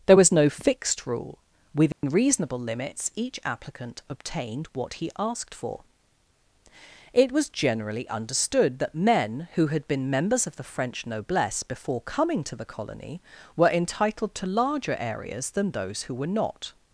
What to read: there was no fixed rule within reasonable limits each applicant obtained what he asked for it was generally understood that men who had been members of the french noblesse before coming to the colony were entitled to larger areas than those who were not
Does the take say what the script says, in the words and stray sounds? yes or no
no